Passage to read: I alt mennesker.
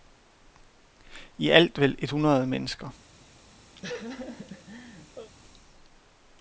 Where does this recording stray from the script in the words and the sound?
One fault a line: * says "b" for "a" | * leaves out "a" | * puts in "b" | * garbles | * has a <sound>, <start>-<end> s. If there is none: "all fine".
* puts in "vel et hundrede"
* has a laugh, 3.8-5.3 s